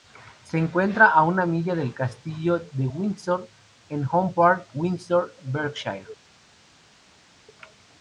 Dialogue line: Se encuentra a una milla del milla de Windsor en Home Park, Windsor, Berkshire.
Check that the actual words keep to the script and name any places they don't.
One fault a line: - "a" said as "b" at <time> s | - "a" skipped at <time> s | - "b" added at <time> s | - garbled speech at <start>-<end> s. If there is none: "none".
- "milla" said as "castillo" at 1.9 s